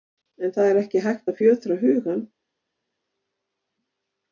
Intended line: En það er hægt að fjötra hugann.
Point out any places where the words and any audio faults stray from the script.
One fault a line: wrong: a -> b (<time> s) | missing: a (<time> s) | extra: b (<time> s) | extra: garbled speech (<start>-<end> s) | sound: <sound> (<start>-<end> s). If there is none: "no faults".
extra: ekki (0.8 s)